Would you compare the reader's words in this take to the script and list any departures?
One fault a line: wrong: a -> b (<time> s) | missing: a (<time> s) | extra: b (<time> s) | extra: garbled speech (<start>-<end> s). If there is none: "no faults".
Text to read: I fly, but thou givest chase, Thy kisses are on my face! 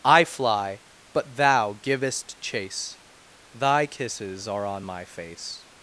no faults